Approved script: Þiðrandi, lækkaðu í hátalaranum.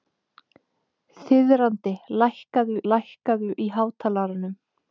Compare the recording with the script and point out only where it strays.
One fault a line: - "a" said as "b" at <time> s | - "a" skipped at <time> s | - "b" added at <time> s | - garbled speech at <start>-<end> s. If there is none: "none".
- "lækkaðu" added at 2.9 s